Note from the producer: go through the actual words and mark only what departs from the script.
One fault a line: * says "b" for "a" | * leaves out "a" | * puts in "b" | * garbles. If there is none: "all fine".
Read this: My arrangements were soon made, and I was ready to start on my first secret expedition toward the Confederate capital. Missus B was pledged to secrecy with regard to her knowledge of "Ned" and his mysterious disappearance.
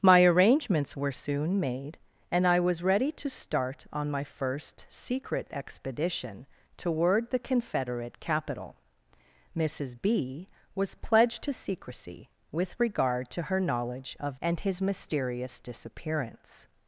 * leaves out "Ned"